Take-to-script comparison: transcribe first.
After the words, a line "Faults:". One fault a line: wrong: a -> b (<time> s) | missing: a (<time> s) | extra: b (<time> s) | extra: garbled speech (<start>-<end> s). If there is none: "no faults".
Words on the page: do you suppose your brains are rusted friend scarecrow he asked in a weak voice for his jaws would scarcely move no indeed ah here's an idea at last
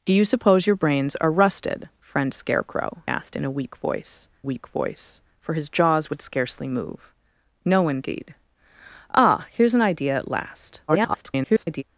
do you suppose your brains are rusted friend scarecrow asked in a weak voice weak voice for his jaws would scarcely move no indeed ah here's an idea at last [garbled]
Faults:
missing: he (3.0 s)
extra: weak voice (4.4 s)
extra: garbled speech (10.9-11.8 s)